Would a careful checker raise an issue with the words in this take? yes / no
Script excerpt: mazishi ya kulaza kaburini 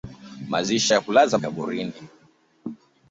no